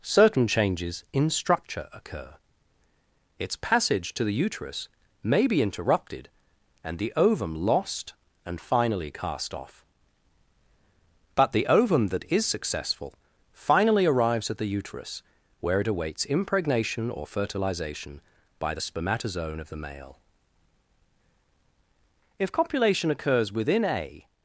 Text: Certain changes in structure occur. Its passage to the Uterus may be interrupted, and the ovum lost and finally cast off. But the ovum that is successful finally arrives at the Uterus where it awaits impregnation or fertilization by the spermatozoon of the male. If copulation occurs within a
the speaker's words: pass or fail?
pass